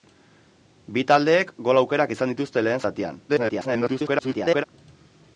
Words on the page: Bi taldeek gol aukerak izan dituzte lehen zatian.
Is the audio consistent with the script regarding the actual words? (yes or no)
no